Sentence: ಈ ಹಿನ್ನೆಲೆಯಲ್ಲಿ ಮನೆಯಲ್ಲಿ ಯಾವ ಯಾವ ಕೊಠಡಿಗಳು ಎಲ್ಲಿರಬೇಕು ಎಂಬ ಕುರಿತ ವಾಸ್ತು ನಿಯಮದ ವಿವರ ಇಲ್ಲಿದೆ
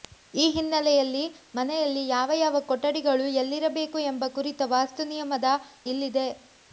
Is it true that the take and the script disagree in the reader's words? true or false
true